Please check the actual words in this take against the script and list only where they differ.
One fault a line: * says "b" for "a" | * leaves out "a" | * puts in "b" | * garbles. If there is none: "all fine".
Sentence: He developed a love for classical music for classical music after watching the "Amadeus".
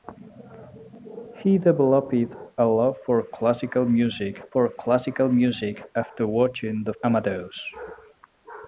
all fine